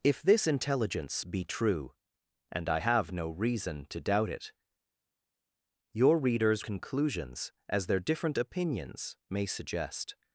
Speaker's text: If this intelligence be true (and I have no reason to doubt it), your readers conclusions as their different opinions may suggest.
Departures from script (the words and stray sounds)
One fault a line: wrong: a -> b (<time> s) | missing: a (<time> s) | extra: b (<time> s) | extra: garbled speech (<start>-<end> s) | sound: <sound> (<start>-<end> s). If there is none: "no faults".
no faults